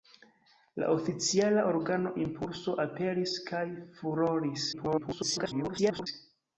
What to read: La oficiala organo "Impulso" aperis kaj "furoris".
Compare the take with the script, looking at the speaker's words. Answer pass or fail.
fail